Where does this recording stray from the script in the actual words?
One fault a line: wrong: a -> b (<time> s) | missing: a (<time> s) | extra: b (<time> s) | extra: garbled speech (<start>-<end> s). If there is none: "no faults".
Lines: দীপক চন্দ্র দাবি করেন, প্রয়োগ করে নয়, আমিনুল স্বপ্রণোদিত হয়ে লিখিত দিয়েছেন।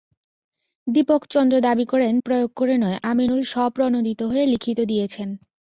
no faults